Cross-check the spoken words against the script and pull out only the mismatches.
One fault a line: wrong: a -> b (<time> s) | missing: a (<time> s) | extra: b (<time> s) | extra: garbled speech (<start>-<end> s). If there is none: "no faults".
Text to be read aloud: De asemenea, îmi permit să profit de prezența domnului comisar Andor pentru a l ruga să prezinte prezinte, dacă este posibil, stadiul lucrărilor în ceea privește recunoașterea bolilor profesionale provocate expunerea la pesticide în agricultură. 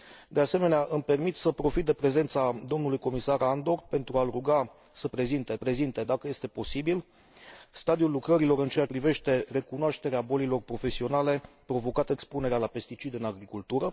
no faults